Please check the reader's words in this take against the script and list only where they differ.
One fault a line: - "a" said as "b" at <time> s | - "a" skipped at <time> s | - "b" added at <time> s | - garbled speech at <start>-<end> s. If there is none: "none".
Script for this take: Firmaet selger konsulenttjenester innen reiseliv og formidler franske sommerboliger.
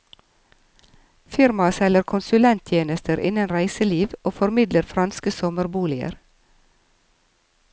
none